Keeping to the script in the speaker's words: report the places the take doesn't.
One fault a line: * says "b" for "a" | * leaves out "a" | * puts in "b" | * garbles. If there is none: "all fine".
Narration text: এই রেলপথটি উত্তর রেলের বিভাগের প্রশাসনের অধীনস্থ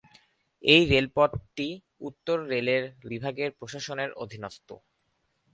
all fine